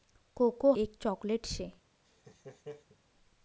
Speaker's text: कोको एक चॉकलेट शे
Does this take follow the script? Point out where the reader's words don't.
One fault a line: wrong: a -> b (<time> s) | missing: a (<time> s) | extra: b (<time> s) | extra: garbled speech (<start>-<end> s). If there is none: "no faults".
no faults